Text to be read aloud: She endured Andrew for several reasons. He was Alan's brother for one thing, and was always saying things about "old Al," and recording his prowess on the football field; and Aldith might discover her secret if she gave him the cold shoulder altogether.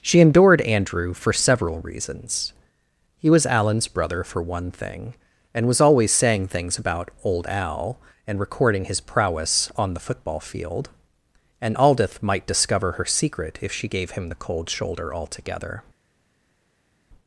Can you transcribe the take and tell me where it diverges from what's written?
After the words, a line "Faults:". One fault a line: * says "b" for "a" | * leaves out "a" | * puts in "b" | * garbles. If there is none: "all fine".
She endured Andrew for several reasons. He was Alan's brother for one thing, and was always saying things about "old Al," and recording his prowess on the football field; and Aldith might discover her secret if she gave him the cold shoulder altogether.
Faults:
all fine